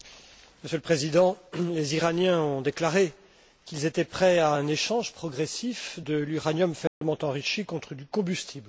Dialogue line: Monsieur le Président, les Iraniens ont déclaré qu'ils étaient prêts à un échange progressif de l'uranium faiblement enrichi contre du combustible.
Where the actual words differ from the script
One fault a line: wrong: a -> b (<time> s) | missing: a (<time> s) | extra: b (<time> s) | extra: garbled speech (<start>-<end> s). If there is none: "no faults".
no faults